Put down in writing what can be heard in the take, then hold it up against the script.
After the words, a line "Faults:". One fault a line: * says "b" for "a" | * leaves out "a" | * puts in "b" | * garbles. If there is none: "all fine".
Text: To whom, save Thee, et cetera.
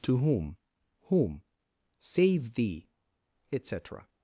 To whom whom, save Thee, et cetera.
Faults:
* puts in "whom"